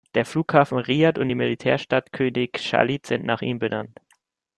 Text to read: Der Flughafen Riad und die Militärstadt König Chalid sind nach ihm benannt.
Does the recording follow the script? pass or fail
pass